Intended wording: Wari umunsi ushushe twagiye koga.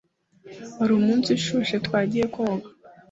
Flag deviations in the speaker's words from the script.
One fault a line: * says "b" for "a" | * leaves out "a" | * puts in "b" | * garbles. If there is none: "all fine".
all fine